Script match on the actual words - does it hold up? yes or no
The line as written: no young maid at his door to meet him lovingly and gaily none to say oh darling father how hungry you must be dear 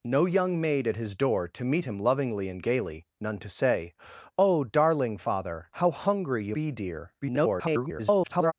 no